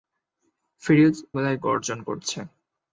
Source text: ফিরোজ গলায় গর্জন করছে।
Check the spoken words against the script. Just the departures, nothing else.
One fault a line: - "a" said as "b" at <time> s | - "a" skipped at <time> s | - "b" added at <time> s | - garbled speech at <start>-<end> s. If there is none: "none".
none